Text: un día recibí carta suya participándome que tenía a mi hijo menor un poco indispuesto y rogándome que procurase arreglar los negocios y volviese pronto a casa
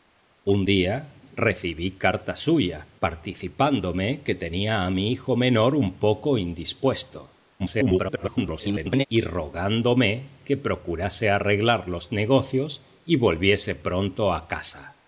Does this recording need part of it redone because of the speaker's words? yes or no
yes